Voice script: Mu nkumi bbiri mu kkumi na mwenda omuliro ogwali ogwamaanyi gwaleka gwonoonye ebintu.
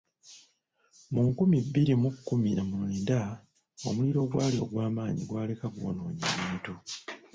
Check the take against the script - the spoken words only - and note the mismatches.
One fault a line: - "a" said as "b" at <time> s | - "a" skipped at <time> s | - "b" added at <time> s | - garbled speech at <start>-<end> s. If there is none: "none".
none